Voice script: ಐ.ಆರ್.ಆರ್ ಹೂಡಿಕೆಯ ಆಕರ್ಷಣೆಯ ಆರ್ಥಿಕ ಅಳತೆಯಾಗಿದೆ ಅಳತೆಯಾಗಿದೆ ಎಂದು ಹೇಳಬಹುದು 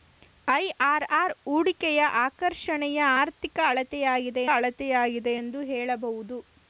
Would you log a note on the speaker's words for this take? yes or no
no